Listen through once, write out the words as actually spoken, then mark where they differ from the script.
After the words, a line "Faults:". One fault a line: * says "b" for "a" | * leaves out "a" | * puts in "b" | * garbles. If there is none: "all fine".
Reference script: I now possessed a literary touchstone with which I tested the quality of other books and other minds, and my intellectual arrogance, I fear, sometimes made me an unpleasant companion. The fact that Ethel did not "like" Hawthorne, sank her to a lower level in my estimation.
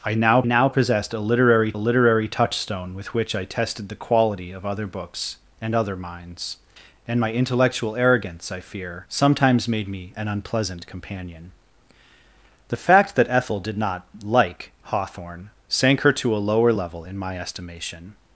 I now now possessed a literary literary touchstone with which I tested the quality of other books and other minds, and my intellectual arrogance, I fear, sometimes made me an unpleasant companion. The fact that Ethel did not "like" Hawthorne, sank her to a lower level in my estimation.
Faults:
* puts in "now"
* puts in "literary"